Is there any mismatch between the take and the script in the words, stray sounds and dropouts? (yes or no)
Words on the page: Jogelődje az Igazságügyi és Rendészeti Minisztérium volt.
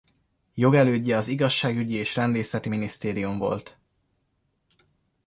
no